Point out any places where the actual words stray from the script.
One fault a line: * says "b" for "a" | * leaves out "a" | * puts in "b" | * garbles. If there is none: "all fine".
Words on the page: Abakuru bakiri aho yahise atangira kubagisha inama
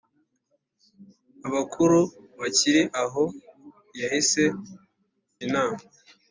* leaves out "atangira kubagisha"